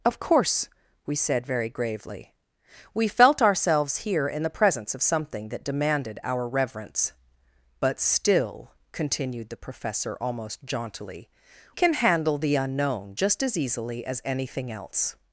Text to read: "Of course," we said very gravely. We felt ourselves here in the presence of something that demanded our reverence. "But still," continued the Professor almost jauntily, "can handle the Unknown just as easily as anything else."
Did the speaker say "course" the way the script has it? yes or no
yes